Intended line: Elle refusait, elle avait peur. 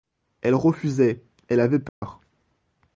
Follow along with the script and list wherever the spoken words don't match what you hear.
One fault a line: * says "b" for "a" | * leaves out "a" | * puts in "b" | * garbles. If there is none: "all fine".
all fine